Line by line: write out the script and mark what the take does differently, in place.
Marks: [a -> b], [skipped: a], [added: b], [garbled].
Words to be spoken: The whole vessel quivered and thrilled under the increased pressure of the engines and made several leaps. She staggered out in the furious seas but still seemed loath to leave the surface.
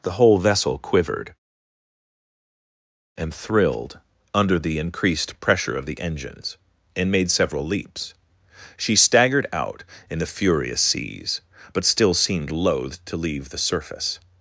The whole vessel quivered and thrilled under the increased pressure of the engines and made several leaps. She staggered out in the furious seas but still seemed loath to leave the surface.